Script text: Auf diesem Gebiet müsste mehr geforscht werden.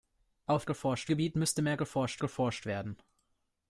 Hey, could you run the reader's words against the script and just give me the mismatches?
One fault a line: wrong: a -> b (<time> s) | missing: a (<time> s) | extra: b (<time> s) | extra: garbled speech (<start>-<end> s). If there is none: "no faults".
wrong: diesem -> geforscht (0.6 s)
extra: geforscht (2.2 s)